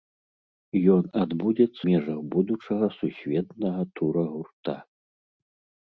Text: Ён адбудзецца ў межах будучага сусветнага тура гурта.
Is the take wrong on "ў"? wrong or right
wrong